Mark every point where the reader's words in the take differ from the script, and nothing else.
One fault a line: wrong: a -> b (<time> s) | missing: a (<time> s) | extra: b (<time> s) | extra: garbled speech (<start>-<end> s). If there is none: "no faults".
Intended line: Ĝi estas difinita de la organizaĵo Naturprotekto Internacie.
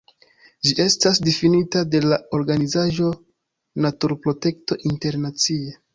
no faults